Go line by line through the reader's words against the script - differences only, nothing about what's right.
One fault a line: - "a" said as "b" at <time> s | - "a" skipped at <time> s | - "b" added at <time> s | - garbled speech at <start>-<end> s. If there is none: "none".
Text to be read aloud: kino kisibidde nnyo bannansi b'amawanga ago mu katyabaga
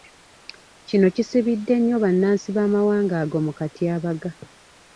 none